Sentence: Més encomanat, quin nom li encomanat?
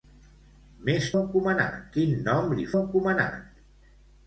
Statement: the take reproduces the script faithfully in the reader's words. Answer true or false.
true